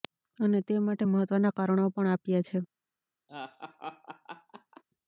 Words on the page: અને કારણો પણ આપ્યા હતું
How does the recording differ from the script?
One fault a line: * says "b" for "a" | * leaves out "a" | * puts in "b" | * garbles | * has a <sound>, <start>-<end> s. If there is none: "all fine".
* puts in "તે માટે મહત્વના"
* says "છે" for "હતું"
* has a laugh, 3.3-4.8 s